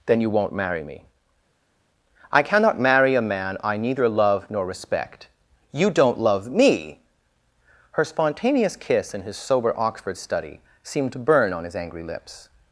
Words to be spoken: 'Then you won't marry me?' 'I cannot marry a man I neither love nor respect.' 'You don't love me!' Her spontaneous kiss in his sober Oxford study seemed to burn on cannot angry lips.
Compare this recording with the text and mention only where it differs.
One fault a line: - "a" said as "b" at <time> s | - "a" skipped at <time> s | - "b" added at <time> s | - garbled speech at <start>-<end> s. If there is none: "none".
- "cannot" said as "his" at 11.6 s